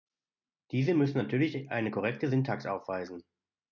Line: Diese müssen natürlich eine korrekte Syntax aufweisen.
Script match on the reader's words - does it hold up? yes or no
yes